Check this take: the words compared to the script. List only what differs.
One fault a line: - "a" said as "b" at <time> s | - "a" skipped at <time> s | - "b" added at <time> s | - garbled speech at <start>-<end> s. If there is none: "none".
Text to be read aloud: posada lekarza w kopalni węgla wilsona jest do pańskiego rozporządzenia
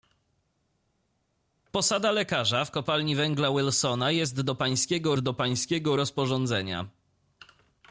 - "do pańskiego" added at 5.2 s